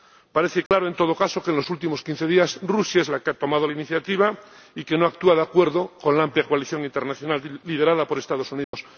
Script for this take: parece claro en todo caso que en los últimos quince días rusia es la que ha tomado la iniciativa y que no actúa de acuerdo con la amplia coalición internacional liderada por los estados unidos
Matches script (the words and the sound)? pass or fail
fail